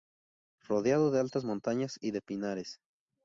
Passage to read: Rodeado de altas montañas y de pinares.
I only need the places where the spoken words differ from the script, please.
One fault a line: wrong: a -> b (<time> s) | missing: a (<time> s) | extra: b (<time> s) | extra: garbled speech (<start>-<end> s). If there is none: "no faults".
no faults